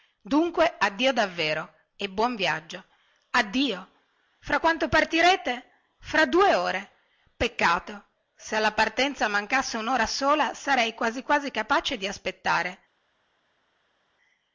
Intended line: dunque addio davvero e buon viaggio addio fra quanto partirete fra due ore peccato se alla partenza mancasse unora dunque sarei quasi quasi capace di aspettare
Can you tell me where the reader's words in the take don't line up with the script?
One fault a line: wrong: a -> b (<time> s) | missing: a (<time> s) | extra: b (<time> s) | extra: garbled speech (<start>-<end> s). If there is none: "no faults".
wrong: dunque -> sola (10.1 s)